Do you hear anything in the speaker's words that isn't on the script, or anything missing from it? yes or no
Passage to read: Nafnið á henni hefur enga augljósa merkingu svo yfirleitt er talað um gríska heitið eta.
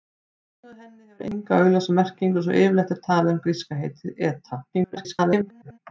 yes